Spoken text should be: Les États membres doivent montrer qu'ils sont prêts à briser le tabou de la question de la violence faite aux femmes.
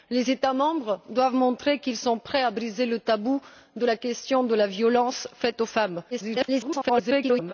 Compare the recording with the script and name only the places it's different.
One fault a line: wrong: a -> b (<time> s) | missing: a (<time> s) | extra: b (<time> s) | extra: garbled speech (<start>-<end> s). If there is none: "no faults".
extra: garbled speech (6.1-7.5 s)